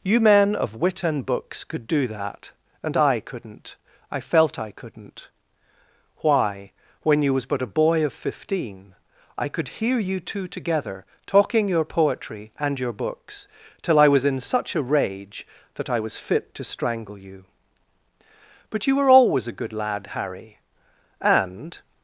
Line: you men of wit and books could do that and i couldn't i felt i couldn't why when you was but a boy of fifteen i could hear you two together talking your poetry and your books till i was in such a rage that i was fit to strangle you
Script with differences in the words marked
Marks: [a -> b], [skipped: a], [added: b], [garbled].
you men of wit and books could do that and i couldn't i felt i couldn't why when you was but a boy of fifteen i could hear you two together talking your poetry and your books till i was in such a rage that i was fit to strangle you [added: but you were always a good lad harry and]